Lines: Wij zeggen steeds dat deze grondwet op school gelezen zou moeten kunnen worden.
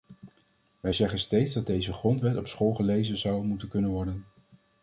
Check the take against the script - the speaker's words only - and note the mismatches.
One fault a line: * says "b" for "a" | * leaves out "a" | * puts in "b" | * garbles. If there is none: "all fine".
all fine